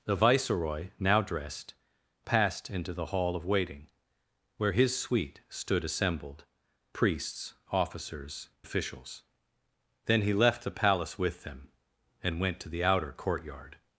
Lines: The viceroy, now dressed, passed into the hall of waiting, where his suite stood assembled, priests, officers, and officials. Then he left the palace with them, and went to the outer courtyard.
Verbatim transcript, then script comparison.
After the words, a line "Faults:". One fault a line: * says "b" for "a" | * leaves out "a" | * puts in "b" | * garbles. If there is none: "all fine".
The viceroy, now dressed, passed into the hall of waiting, where his suite stood assembled, priests, officers, officials. Then he left the palace with them, and went to the outer courtyard.
Faults:
* leaves out "and"